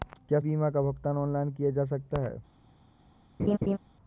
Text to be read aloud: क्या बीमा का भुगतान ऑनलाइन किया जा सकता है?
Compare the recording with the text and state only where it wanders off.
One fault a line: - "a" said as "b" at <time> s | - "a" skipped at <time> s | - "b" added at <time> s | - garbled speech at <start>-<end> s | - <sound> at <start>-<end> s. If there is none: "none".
- laugh at 3.4-3.8 s